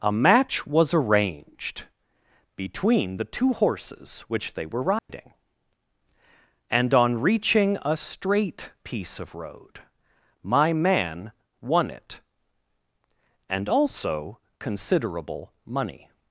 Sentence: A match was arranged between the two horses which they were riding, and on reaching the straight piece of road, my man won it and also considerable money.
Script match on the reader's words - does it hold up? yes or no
no